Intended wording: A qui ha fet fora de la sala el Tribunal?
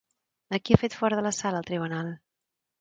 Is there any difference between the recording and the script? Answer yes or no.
no